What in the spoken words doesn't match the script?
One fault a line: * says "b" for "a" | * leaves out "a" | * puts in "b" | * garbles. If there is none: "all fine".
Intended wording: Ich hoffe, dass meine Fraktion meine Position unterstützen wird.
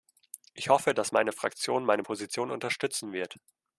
all fine